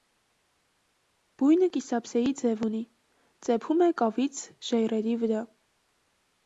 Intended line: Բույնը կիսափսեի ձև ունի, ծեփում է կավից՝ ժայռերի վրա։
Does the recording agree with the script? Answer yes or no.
yes